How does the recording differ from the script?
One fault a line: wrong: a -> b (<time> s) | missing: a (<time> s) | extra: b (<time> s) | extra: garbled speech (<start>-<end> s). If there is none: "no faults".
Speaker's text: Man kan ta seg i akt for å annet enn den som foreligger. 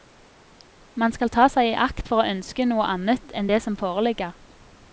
wrong: kan -> skal (1.1 s)
extra: ønske noe (2.3 s)
wrong: den -> det (3.5 s)